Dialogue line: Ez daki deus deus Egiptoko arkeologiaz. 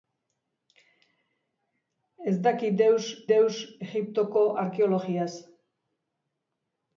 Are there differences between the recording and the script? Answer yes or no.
no